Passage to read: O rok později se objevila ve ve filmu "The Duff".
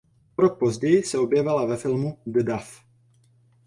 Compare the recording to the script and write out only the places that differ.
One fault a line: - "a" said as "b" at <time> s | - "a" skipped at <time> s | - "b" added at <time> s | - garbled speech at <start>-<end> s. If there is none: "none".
- "ve" skipped at 1.8 s